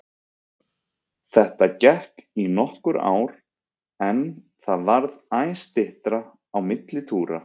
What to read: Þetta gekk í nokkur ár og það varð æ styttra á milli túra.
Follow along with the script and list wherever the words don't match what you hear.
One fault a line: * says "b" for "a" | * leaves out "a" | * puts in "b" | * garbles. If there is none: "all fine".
* says "en" for "og"